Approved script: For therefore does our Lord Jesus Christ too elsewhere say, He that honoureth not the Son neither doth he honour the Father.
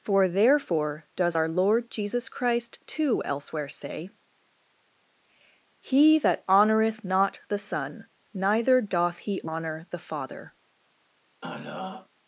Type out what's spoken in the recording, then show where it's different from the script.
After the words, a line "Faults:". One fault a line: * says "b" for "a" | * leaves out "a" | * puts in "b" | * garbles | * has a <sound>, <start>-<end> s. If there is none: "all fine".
For therefore does our Lord Jesus Christ too elsewhere say, He that honoureth not the Son neither doth he honour the Father.
Faults:
* has a throat clearing, 11.4-12.1 s